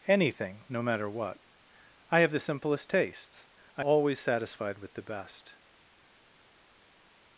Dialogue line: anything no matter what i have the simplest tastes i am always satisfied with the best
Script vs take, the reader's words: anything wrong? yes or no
yes